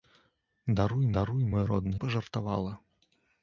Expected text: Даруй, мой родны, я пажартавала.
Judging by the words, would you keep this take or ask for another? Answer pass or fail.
fail